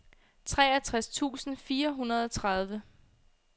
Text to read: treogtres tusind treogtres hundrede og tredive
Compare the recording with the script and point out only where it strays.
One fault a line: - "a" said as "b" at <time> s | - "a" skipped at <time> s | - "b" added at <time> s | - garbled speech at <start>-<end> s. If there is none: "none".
- "treogtres" said as "fire" at 1.6 s